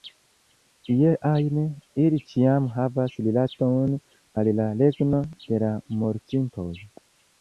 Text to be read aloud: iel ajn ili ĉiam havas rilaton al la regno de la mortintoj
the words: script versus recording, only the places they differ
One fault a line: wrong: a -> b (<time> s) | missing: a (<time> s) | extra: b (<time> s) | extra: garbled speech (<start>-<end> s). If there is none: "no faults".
no faults